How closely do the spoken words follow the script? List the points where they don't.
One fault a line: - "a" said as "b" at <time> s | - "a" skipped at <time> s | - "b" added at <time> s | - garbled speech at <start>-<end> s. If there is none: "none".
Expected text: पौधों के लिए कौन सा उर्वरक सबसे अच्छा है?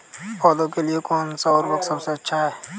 none